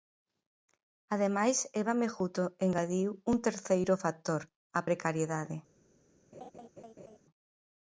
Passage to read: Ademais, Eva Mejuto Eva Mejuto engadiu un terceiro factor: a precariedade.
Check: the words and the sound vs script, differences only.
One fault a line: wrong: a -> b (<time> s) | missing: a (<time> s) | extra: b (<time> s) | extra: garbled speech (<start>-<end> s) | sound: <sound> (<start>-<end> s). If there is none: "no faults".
missing: Eva Mejuto (2.4 s)
sound: laugh (6.3-7.2 s)